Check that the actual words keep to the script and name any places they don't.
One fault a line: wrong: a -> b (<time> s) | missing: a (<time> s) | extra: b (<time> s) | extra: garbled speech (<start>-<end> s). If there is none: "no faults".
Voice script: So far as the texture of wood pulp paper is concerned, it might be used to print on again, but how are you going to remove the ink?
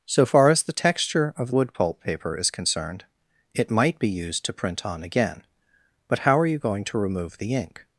no faults